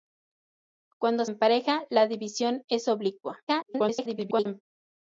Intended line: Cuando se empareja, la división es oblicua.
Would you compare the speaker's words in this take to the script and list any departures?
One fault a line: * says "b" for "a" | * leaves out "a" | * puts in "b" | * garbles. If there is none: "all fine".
* leaves out "se"
* garbles